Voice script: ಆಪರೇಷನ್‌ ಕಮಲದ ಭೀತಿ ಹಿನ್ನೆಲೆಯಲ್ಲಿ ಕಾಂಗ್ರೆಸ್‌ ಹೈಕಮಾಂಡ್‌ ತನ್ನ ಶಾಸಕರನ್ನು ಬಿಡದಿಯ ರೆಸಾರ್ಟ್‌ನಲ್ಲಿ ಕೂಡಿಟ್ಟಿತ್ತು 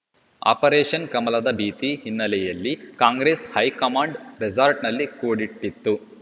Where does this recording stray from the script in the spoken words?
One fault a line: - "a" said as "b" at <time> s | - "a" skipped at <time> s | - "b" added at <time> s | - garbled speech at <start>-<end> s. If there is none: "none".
- "ತನ್ನ ಶಾಸಕರನ್ನು ಬಿಡದಿಯ" skipped at 4.2 s